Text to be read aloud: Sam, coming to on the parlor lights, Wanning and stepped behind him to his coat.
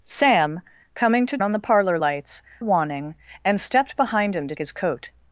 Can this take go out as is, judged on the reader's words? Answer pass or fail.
pass